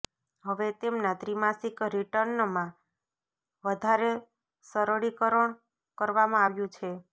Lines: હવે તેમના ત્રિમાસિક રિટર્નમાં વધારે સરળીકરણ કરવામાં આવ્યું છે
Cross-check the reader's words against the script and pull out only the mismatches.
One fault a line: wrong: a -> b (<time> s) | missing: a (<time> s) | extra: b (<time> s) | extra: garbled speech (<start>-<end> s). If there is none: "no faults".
no faults